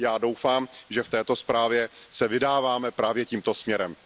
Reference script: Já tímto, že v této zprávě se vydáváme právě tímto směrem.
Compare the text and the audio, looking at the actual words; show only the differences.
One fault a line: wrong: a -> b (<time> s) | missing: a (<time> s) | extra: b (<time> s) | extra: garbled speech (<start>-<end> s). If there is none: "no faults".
wrong: tímto -> doufám (0.2 s)